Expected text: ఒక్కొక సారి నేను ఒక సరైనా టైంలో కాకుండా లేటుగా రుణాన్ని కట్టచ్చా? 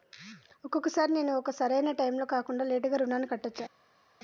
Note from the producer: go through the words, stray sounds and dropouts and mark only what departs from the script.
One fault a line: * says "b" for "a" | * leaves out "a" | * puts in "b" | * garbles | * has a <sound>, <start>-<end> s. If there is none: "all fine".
all fine